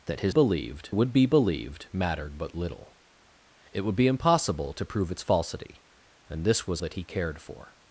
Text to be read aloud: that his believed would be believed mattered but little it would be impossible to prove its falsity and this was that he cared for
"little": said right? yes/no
yes